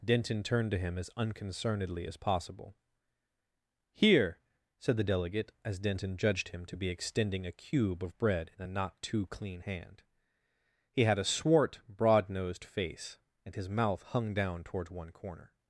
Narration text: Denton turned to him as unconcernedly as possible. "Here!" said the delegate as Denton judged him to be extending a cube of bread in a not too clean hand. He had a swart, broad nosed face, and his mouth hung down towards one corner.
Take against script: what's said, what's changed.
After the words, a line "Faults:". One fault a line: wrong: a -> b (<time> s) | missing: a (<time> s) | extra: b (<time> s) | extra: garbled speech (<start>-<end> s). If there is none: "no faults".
Denton turned to him as unconcernedly as possible. "Here!" said the delegate as Denton judged him to be extending a cube of bread in a not too clean hand. He had a swart, broad nosed face, and his mouth hung down towards one corner.
Faults:
no faults